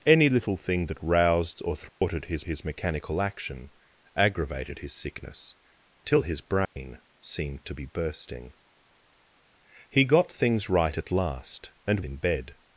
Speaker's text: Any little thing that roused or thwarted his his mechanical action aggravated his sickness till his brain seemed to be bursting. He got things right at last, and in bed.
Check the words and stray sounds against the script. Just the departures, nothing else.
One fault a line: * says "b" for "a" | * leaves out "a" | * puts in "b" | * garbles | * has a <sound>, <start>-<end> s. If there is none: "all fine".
* has a dropout, 1.9-2.0 s
* has a dropout, 6.6-6.8 s